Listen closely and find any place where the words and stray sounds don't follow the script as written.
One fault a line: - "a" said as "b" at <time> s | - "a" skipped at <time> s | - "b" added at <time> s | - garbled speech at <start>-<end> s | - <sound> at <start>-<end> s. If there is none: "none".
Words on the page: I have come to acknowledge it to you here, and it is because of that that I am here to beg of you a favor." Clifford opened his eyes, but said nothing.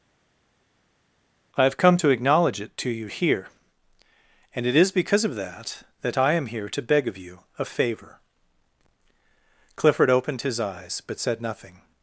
none